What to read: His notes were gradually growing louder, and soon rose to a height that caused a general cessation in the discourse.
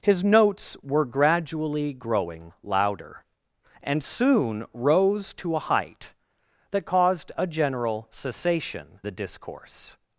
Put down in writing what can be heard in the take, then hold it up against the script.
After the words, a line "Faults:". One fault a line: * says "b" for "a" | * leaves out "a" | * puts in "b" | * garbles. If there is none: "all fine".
His notes were gradually growing louder, and soon rose to a height that caused a general cessation the discourse.
Faults:
* leaves out "in"